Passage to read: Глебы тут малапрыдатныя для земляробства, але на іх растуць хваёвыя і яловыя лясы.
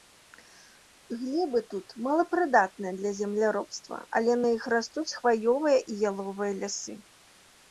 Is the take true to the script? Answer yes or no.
yes